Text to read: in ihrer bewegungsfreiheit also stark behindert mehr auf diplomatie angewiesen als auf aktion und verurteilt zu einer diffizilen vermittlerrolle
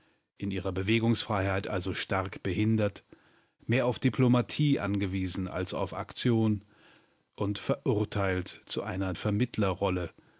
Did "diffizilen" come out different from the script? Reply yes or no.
yes